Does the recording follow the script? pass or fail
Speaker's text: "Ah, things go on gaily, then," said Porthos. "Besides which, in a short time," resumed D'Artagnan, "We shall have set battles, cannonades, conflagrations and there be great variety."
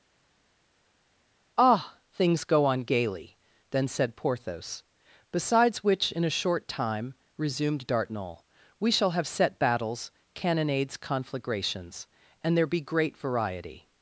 pass